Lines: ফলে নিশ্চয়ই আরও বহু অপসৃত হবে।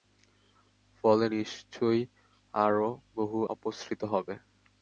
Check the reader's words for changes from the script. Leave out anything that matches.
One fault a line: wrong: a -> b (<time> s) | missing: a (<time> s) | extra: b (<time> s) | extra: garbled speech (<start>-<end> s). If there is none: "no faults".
no faults